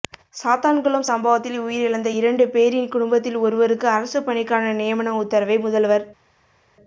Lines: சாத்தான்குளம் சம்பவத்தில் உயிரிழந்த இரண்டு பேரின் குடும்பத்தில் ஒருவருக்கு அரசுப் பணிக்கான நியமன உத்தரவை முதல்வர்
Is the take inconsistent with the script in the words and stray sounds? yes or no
no